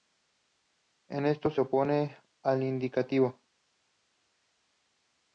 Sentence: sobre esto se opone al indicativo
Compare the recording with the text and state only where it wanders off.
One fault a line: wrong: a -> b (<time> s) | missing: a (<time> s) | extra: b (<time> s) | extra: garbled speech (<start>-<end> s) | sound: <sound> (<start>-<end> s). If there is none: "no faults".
wrong: sobre -> en (1.1 s)